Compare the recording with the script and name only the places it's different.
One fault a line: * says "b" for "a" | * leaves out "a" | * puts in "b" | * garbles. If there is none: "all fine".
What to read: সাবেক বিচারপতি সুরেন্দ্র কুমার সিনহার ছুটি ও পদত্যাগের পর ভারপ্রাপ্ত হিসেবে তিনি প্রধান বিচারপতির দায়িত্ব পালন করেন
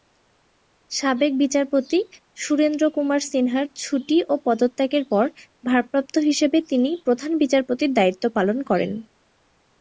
all fine